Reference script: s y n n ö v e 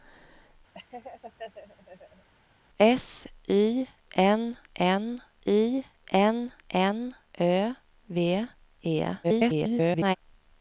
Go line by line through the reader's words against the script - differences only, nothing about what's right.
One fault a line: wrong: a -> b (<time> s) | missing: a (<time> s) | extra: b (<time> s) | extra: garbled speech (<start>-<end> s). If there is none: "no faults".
extra: y n n (5.5 s)
extra: garbled speech (9.2-10.2 s)